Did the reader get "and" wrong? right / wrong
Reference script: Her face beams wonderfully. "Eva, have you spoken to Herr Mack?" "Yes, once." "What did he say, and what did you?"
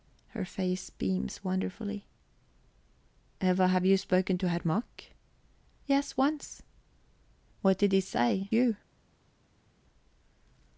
wrong